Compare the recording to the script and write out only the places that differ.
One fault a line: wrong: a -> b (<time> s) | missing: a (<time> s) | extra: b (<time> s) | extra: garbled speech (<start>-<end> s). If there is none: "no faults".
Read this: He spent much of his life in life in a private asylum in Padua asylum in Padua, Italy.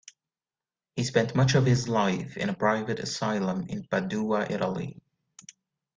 missing: life in (2.5 s)
missing: asylum in Padua (4.5 s)